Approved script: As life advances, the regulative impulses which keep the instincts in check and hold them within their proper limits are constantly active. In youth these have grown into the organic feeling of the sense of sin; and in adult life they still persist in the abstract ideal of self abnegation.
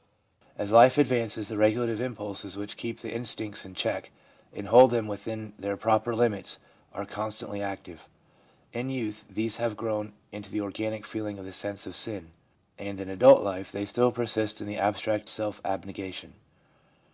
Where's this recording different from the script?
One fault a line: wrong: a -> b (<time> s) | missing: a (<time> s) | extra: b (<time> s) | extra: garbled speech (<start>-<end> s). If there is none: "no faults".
missing: ideal of (15.3 s)